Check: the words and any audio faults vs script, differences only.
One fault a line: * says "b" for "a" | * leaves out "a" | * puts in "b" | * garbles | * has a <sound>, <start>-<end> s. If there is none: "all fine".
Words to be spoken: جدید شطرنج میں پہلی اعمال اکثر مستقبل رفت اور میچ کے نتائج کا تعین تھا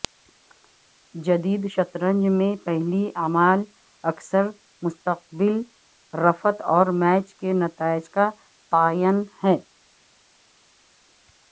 * says "ہے" for "تھا"